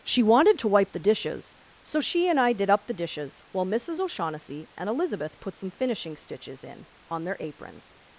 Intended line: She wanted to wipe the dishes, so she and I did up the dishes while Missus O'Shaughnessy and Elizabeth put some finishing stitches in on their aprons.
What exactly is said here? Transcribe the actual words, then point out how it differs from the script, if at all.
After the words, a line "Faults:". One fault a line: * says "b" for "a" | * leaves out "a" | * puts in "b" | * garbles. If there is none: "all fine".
She wanted to wipe the dishes, so she and I did up the dishes while Missus O'Shaughnessy and Elizabeth put some finishing stitches in on their aprons.
Faults:
all fine